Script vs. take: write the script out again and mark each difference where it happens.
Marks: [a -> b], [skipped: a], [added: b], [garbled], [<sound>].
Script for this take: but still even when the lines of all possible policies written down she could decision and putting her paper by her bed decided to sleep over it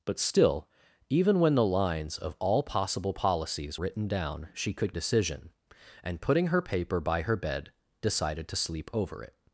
but still even when the lines of all possible policies written down she could decision and putting her paper by her bed decided to sleep over it